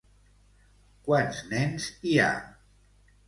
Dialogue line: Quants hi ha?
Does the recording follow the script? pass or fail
fail